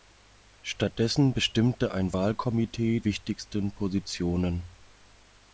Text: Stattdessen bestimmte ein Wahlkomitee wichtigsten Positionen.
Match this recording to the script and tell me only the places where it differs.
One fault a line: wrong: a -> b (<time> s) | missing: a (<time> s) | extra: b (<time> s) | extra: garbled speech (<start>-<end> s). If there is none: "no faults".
no faults